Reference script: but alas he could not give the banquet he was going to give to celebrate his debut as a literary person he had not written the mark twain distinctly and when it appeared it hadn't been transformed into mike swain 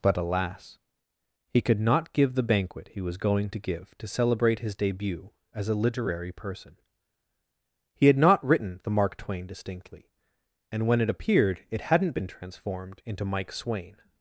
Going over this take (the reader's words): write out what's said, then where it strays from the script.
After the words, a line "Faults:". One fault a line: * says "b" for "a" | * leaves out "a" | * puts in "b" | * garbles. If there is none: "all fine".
but alas he could not give the banquet he was going to give to celebrate his debut as a literary person he had not written the mark twain distinctly and when it appeared it hadn't been transformed into mike swain
Faults:
all fine